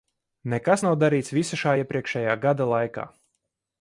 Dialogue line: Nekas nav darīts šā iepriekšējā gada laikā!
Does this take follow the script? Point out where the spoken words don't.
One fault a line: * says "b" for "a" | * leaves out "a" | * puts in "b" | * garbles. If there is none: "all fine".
* puts in "visa"